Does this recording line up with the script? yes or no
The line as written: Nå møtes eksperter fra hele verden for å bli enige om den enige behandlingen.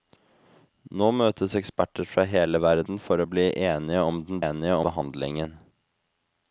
yes